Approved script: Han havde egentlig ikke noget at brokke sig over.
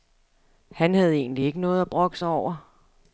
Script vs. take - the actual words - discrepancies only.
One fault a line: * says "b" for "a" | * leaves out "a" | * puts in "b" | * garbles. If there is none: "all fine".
all fine